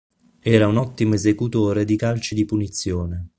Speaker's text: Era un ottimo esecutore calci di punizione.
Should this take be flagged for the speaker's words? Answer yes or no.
yes